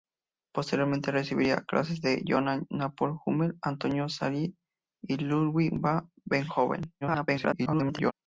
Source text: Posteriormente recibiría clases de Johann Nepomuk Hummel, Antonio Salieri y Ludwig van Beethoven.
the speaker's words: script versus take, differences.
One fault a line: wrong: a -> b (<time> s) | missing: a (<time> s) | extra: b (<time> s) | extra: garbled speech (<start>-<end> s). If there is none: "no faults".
extra: garbled speech (7.0-8.1 s)